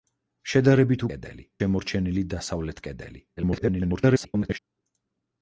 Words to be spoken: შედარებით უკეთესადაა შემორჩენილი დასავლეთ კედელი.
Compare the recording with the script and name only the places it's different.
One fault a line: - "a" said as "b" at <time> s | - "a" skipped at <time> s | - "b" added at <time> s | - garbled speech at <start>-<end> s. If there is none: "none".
- "უკეთესადაა" said as "კედელი" at 1.1 s
- garbled speech at 3.4-4.6 s